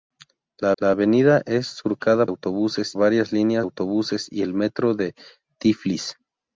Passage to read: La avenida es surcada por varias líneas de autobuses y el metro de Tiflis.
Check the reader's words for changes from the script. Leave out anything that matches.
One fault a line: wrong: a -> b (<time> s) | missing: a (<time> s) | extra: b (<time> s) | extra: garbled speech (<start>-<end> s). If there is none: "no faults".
extra: la (0.8 s)
wrong: por -> autobuses (2.2 s)
missing: de (3.7 s)